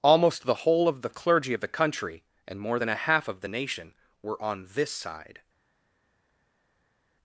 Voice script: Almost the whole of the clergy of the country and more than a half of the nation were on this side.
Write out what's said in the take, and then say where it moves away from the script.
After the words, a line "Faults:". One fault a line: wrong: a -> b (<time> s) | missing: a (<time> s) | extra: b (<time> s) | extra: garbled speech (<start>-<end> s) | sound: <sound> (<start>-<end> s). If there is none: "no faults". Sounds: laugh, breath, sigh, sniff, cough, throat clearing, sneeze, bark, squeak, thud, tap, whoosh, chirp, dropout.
Almost the whole of the clergy of the country and more than a half of the nation were on this side.
Faults:
no faults